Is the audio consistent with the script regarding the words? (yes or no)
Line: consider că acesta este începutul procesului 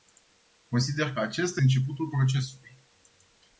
no